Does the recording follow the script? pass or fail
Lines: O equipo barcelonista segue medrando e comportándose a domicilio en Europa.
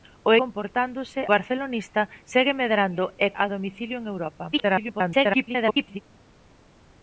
fail